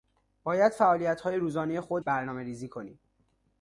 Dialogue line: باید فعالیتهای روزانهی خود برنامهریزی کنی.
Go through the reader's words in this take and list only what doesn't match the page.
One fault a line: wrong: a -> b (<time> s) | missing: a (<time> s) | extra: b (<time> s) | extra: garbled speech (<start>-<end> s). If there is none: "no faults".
no faults